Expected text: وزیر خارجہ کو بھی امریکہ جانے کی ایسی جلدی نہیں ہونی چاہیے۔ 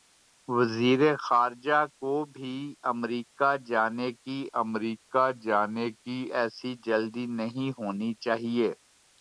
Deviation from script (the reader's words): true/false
true